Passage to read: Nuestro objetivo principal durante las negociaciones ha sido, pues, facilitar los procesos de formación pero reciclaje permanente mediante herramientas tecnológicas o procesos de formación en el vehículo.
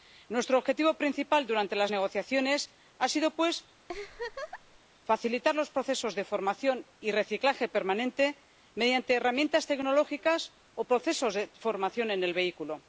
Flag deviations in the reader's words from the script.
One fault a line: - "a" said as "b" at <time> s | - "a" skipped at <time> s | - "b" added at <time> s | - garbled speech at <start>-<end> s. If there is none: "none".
- "pero" said as "y" at 7.0 s